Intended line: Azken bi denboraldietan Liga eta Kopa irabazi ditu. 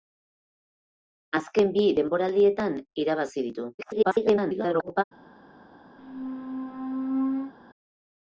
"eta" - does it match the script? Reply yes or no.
no